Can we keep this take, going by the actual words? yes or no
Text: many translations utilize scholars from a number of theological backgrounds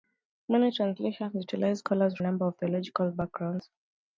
no